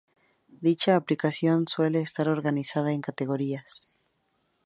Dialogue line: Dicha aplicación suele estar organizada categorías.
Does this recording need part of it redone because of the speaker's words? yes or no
yes